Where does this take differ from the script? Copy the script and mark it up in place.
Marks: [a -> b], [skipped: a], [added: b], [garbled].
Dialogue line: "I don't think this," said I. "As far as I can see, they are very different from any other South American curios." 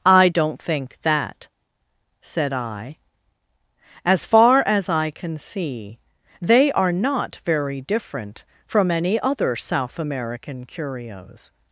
"I don't think [this," -> that] said I. "As far as I can see, they are [added: not] very different from any other South American curios."